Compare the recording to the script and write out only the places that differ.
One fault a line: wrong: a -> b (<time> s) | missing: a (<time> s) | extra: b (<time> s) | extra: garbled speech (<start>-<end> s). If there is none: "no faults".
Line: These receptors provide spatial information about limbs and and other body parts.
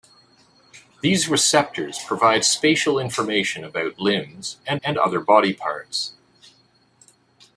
no faults